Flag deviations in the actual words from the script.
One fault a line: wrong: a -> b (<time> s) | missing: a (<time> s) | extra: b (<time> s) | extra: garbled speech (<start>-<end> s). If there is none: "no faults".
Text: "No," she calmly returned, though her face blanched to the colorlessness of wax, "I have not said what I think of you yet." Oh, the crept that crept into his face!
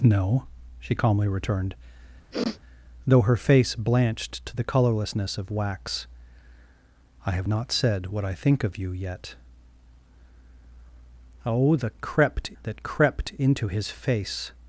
no faults